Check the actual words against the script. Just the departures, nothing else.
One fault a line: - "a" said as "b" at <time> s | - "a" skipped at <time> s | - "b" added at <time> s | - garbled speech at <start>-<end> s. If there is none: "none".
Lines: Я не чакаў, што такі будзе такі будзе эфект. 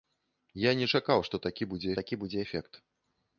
none